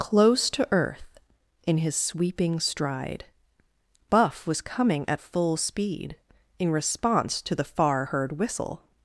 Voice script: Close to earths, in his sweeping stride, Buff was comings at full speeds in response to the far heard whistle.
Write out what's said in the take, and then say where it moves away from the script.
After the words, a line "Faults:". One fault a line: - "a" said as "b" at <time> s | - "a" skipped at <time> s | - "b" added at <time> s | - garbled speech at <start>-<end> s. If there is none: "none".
Close to earth, in his sweeping stride, Buff was coming at full speed in response to the far heard whistle.
Faults:
- "earths" said as "earth" at 0.7 s
- "comings" said as "coming" at 4.6 s
- "speeds" said as "speed" at 5.6 s